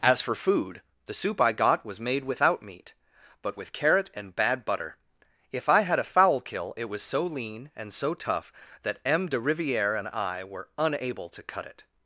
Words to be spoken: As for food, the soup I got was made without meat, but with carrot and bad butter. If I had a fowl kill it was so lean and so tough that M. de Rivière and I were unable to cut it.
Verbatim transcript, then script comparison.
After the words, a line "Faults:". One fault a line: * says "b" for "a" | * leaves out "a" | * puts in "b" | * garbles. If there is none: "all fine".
As for food, the soup I got was made without meat, but with carrot and bad butter. If I had a fowl kill it was so lean and so tough that M. de Rivière and I were unable to cut it.
Faults:
all fine